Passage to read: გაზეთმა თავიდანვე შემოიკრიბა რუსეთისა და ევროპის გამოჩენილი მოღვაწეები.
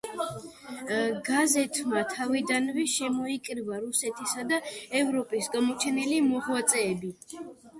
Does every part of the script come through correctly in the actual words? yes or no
yes